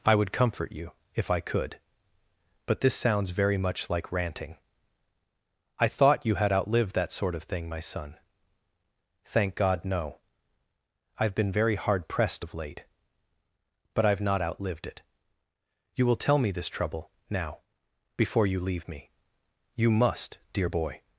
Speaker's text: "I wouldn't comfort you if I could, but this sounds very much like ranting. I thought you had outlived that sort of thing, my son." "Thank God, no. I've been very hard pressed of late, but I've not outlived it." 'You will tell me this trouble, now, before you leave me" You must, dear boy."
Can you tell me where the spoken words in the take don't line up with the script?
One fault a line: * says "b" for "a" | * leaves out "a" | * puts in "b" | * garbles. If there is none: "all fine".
* says "would" for "wouldn't"